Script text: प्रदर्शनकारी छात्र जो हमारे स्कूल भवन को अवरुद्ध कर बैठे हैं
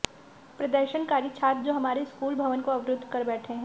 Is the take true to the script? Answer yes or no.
yes